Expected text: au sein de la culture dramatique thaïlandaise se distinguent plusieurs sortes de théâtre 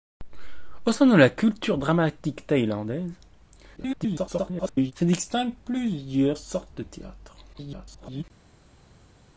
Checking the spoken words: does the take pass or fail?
fail